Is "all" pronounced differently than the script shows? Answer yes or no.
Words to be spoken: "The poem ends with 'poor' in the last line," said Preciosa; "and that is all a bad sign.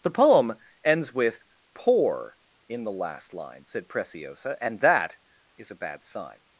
yes